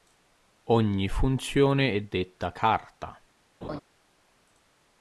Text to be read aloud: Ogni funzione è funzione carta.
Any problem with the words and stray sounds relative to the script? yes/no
yes